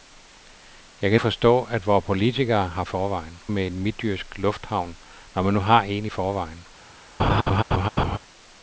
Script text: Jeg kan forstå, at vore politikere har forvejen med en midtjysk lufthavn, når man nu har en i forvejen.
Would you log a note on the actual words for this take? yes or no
no